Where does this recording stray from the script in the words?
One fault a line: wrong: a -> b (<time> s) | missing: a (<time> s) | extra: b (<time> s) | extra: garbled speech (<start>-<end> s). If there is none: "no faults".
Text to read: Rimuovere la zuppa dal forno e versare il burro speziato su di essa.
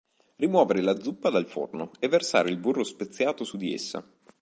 no faults